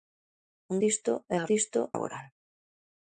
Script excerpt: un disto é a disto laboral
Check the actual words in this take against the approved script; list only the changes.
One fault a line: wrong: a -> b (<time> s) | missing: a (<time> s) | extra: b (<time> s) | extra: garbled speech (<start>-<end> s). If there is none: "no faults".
no faults